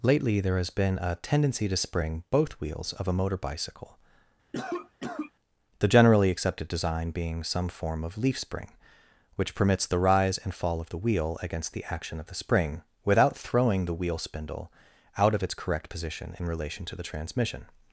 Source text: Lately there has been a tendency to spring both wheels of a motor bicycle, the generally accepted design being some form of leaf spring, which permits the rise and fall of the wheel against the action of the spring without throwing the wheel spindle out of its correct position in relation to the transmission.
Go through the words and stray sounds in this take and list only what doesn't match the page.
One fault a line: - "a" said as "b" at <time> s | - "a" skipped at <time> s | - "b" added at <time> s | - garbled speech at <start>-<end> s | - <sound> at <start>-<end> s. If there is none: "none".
- cough at 4.5-5.3 s